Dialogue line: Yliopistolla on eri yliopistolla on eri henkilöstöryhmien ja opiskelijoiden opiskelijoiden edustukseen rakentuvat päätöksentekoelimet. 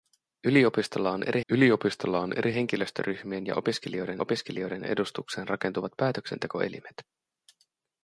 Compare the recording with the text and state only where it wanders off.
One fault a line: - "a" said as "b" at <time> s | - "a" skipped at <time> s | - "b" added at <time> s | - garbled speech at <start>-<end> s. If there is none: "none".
none